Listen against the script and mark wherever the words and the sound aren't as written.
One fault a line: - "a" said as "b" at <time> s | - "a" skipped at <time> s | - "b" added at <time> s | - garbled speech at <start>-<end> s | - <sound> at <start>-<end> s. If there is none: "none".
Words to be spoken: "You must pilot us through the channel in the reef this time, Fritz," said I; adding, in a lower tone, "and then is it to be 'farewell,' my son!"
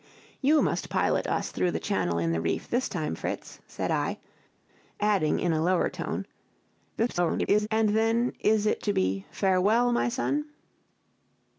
- garbled speech at 7.0-7.7 s